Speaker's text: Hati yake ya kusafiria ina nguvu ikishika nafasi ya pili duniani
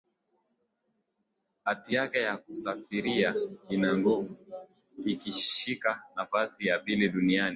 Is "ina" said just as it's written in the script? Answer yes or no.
yes